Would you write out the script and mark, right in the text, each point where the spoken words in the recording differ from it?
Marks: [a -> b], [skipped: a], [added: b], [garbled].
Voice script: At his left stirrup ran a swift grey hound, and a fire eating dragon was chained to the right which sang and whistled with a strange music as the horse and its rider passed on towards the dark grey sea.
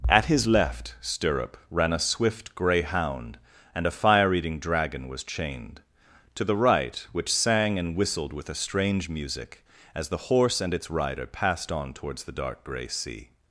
At his left stirrup ran a swift grey hound, and a fire eating dragon was chained to the right which sang and whistled with a strange music as the horse and its rider passed on towards the dark grey sea.